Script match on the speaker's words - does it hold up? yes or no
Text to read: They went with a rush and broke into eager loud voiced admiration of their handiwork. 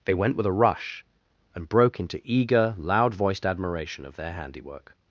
yes